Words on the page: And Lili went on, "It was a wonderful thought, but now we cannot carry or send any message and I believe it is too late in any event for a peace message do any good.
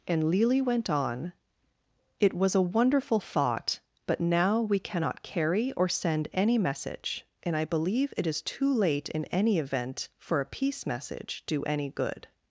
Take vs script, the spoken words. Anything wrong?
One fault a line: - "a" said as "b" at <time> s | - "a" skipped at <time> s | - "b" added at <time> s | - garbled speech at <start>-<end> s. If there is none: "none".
none